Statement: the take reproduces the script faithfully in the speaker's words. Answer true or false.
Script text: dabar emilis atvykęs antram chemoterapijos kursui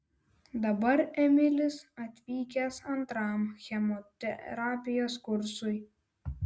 true